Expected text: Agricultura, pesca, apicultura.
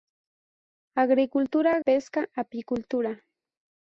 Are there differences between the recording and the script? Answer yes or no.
no